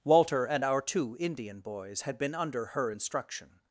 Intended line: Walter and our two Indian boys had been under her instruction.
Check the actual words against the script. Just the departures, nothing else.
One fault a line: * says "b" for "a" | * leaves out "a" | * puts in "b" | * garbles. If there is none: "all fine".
all fine